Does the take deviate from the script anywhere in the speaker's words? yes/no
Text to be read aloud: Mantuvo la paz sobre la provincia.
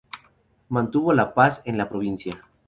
yes